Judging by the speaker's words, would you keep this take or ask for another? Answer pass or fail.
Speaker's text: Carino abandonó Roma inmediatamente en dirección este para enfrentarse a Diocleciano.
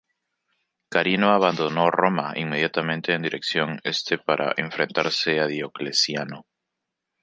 pass